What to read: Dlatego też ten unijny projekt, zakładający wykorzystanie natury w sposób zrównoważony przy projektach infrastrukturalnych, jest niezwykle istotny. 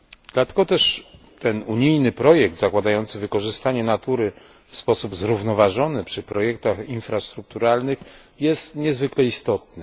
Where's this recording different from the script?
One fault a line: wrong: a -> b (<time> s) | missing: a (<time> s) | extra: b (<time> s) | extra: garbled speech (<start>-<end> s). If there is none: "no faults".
no faults